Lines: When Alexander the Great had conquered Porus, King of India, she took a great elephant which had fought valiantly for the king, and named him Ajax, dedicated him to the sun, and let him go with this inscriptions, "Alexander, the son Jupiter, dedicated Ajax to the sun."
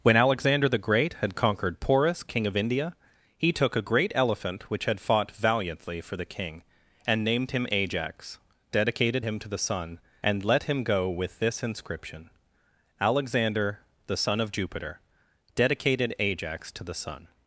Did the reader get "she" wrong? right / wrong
wrong